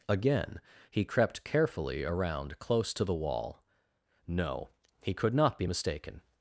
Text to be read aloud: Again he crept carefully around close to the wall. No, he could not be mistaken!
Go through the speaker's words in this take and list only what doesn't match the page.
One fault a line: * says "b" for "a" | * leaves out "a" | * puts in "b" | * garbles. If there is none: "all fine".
all fine